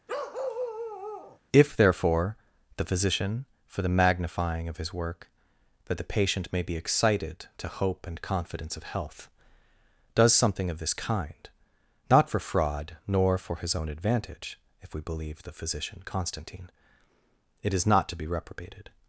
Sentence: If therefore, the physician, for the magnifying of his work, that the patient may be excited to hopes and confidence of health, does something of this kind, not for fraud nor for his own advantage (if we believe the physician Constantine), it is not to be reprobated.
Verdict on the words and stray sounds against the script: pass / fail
fail